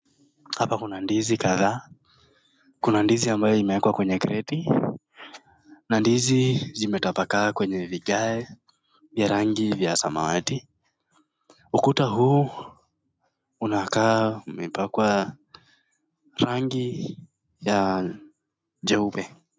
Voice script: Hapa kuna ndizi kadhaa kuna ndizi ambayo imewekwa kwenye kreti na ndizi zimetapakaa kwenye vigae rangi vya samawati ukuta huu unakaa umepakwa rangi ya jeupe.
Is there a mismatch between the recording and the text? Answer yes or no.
yes